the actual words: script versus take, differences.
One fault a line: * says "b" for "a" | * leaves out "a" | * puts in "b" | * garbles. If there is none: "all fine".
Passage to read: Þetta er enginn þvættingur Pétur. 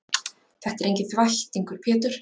all fine